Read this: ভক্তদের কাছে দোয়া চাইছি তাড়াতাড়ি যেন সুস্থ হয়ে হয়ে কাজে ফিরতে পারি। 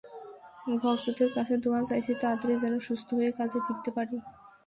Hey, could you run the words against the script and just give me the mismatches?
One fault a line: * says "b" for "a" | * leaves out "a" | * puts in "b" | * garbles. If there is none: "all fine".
* leaves out "হয়ে"